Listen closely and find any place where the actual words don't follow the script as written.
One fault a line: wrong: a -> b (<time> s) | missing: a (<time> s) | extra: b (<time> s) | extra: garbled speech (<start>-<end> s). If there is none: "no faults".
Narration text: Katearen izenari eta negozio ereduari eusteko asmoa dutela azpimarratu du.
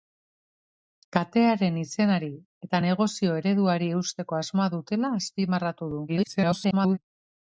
extra: garbled speech (6.1-7.0 s)